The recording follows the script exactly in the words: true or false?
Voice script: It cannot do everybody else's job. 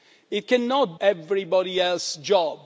false